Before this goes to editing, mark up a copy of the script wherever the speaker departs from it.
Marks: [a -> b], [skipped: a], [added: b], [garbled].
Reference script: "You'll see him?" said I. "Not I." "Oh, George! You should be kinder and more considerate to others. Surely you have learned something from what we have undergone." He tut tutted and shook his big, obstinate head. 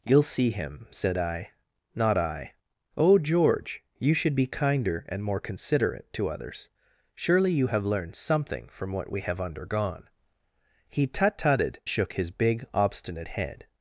"You'll see him?" said I. "Not I." "Oh, George! You should be kinder and more considerate to others. Surely you have learned something from what we have undergone." He tut tutted [skipped: and] shook his big, obstinate head.